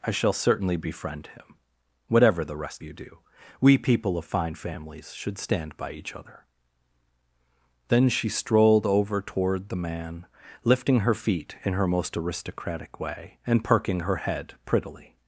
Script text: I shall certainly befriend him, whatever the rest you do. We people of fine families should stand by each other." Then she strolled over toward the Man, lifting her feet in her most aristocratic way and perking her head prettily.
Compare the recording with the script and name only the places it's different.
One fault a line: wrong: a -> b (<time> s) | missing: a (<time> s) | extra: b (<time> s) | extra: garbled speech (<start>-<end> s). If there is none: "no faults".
no faults